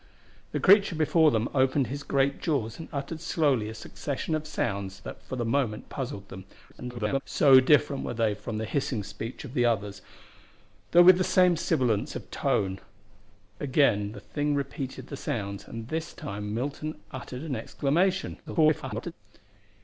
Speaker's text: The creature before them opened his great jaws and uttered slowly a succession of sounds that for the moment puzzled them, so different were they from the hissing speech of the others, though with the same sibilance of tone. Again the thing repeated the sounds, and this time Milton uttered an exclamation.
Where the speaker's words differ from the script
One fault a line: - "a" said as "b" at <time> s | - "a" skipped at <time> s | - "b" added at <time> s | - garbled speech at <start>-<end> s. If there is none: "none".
- garbled speech at 6.7-7.2 s
- garbled speech at 18.5-19.1 s